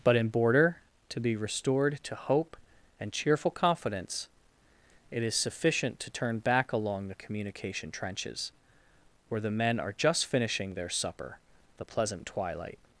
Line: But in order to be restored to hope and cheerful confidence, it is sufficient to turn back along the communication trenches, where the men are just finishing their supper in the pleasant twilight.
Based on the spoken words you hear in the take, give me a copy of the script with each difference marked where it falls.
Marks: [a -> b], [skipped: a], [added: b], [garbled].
But in [order -> border] to be restored to hope and cheerful confidence, it is sufficient to turn back along the communication trenches, where the men are just finishing their supper [skipped: in] the pleasant twilight.